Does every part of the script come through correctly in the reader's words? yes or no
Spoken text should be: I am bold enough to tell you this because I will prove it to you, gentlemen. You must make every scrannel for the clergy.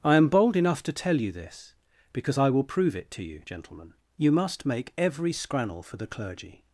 yes